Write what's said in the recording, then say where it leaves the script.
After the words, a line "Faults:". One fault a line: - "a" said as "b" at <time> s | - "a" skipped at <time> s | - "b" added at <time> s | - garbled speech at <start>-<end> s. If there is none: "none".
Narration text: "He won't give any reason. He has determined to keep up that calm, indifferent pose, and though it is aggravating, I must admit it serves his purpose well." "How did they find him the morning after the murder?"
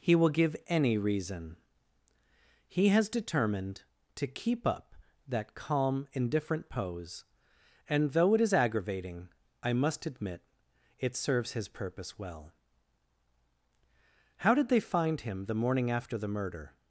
"He will give any reason. He has determined to keep up that calm, indifferent pose, and though it is aggravating, I must admit it serves his purpose well." "How did they find him the morning after the murder?"
Faults:
- "won't" said as "will" at 0.1 s